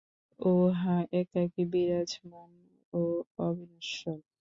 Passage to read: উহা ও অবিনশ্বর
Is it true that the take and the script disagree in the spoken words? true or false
true